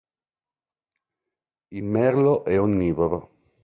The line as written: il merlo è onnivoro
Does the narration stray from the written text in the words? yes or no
no